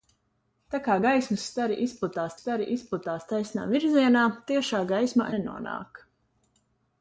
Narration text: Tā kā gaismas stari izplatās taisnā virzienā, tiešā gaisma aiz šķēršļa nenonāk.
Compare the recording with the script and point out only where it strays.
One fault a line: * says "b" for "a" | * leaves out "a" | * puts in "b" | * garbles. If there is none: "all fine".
* puts in "stari izplatās"
* leaves out "aiz šķēršļa"